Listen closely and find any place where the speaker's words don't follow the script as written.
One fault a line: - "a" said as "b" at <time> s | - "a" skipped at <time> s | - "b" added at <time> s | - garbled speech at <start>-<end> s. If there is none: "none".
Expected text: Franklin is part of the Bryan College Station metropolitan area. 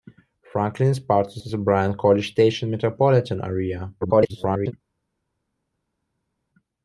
- "of" added at 1.4 s
- garbled speech at 4.0-4.7 s